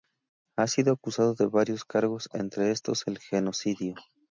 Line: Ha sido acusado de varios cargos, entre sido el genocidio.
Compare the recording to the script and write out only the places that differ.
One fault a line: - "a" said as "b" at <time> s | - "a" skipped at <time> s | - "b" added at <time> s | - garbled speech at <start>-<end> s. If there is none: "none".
- "sido" said as "estos" at 2.7 s